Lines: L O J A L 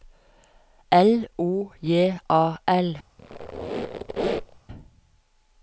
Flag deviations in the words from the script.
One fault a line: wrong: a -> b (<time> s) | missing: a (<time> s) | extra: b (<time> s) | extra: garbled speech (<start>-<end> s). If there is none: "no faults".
no faults